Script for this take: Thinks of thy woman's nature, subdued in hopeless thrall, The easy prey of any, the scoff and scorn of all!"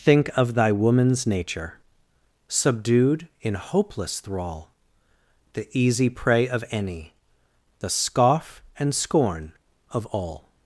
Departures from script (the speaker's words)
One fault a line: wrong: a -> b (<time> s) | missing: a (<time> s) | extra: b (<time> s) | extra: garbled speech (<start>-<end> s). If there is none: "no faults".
wrong: Thinks -> Think (0.0 s)